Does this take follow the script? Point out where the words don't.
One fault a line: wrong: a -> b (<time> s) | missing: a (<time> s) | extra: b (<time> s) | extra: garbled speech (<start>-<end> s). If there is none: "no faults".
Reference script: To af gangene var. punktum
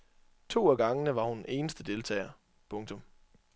extra: hun eneste deltager (1.2 s)